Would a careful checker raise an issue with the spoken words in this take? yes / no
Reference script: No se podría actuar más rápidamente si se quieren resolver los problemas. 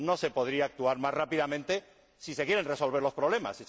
no